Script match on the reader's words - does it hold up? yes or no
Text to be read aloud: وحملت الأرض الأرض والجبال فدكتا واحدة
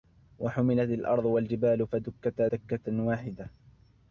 no